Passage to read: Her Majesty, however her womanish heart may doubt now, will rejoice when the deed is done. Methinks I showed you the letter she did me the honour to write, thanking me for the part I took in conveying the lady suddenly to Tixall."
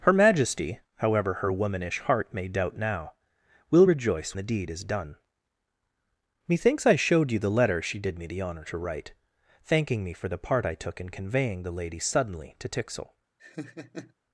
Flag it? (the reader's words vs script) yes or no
yes